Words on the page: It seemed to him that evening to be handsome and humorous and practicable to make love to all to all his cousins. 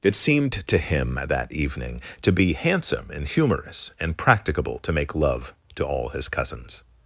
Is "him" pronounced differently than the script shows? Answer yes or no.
no